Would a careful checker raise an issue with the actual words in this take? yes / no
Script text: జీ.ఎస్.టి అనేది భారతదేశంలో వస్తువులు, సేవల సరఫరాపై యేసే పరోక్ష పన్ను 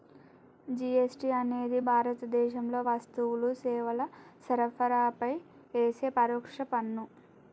no